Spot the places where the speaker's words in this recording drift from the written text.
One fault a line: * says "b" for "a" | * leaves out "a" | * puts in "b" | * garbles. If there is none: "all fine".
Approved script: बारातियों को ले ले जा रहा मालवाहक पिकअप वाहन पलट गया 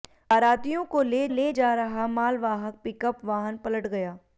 all fine